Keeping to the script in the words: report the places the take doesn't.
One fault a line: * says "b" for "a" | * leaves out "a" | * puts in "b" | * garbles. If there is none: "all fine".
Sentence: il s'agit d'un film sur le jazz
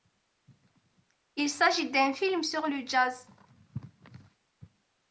all fine